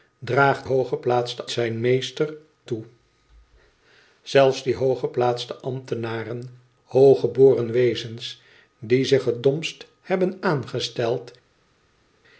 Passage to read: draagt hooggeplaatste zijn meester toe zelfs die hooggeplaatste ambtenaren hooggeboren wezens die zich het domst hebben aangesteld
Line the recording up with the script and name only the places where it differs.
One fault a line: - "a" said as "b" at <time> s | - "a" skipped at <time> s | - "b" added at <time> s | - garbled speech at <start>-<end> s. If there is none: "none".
none